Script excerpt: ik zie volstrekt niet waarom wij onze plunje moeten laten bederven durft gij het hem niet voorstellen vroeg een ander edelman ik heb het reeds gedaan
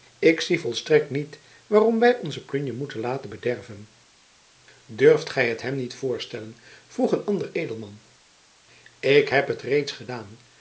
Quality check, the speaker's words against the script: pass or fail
pass